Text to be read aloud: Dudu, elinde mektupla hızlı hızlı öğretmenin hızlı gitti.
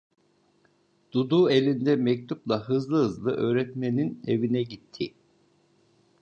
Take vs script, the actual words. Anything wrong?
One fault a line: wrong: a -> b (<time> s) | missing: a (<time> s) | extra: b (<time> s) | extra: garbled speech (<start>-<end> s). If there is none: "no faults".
wrong: hızlı -> evine (4.3 s)